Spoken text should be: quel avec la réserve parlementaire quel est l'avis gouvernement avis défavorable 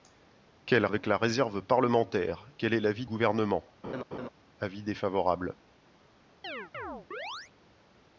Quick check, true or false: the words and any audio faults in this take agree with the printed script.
false